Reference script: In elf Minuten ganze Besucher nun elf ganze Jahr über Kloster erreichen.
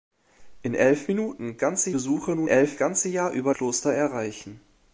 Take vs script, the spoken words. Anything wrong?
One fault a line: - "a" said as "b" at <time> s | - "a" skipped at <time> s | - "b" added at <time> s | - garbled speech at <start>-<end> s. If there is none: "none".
none